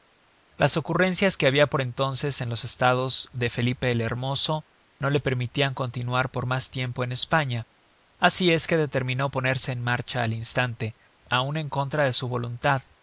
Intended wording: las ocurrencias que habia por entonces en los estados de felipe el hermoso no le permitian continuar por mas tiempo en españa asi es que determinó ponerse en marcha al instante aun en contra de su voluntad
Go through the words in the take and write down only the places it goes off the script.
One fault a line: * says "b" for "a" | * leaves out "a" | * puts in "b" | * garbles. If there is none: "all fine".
all fine